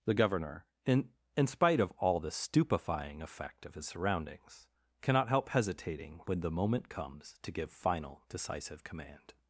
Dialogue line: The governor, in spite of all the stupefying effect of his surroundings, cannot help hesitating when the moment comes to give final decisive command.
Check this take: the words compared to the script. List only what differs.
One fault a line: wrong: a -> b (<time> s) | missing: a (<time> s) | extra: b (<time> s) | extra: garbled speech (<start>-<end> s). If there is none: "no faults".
extra: in (1.4 s)